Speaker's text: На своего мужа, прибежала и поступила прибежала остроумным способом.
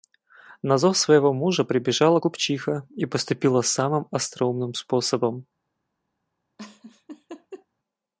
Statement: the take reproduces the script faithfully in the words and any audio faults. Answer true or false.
false